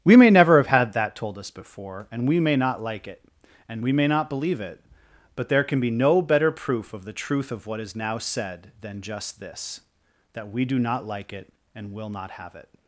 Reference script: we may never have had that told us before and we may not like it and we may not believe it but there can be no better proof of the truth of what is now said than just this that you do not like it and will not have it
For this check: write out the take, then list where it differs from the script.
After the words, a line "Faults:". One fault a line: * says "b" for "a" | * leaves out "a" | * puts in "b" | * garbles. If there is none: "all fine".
we may never have had that told us before and we may not like it and we may not believe it but there can be no better proof of the truth of what is now said than just this that we do not like it and will not have it
Faults:
* says "we" for "you"